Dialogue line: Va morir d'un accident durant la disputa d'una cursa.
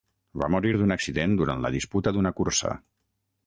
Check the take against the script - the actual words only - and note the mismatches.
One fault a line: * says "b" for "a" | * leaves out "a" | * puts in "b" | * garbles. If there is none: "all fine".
all fine